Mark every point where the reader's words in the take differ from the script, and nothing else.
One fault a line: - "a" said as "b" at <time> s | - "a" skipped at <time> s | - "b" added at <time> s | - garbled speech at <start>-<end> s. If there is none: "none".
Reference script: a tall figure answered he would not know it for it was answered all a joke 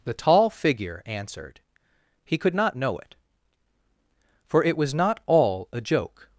- "a" said as "the" at 0.0 s
- "would" said as "could" at 2.4 s
- "answered" said as "not" at 4.9 s